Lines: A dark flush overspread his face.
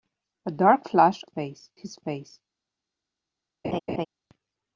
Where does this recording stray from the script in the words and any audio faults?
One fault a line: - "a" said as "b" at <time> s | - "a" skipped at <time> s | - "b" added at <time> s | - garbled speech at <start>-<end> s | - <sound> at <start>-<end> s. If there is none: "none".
- "overspread" said as "face" at 1.2 s
- laugh at 3.6-4.1 s